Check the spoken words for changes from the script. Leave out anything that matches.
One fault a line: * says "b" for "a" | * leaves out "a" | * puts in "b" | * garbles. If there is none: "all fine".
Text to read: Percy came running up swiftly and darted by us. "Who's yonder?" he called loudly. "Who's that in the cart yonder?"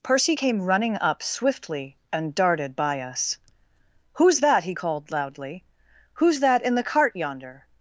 * says "that" for "yonder"